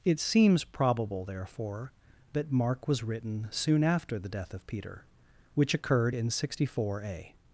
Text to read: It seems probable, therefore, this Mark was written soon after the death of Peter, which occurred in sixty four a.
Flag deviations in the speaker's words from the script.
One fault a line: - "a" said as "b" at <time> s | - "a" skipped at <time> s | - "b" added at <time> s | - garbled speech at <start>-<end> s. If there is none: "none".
- "this" said as "that" at 2.3 s